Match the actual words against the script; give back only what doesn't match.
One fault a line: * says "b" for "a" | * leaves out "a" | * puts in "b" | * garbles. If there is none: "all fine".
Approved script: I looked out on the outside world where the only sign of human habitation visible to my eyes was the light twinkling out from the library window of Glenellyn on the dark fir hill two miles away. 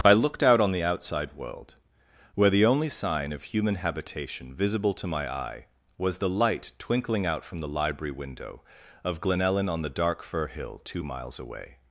* says "eye" for "eyes"